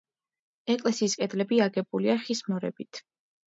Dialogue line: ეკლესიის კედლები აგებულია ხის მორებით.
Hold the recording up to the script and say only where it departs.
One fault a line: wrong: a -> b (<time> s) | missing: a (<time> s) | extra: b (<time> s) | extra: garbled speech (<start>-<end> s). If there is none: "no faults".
no faults